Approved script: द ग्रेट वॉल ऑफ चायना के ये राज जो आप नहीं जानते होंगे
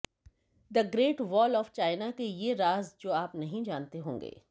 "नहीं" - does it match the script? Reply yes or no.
yes